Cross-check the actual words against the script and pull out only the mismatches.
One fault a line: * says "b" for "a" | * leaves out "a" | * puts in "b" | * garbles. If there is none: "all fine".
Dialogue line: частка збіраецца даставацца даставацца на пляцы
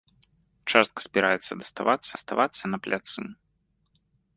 all fine